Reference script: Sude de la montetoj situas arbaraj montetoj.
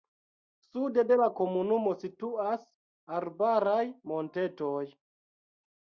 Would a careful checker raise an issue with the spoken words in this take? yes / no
yes